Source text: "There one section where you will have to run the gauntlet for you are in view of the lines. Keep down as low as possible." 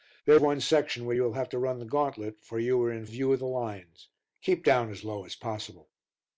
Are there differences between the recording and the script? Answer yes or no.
no